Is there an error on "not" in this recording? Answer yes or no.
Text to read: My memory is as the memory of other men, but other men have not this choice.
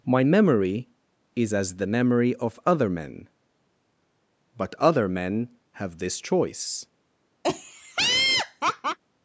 yes